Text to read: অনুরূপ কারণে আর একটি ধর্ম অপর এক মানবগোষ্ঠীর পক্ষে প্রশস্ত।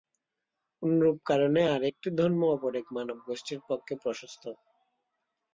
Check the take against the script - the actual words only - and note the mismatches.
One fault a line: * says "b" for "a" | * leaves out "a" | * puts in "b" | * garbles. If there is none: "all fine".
all fine